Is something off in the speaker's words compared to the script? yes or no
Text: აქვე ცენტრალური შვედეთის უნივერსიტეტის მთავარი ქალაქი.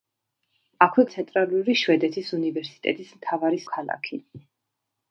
no